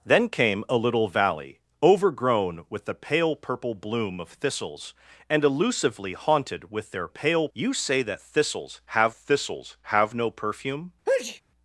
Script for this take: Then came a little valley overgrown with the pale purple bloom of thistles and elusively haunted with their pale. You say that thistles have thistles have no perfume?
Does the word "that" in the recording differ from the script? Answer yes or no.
no